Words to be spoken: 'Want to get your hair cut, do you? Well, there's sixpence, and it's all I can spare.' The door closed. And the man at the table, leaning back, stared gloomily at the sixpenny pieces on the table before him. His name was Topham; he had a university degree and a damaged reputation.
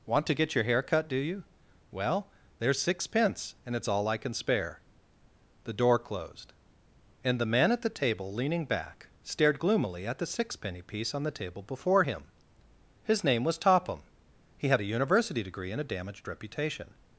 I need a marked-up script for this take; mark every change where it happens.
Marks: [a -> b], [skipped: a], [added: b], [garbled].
'Want to get your hair cut, do you? Well, there's sixpence, and it's all I can spare.' The door closed. And the man at the table, leaning back, stared gloomily at the sixpenny [pieces -> piece] on the table before him. His name was Topham; he had a university degree and a damaged reputation.